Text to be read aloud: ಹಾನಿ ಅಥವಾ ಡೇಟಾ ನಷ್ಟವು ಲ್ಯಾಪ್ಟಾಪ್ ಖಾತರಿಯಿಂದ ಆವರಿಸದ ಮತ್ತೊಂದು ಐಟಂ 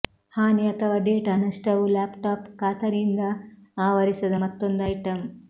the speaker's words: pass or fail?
pass